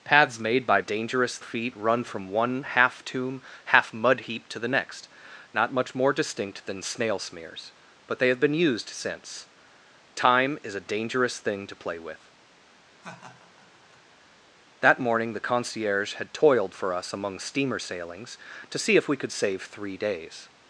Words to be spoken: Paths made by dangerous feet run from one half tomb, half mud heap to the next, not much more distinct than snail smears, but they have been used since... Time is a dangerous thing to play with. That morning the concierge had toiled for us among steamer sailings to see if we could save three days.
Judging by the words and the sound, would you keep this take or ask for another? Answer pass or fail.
fail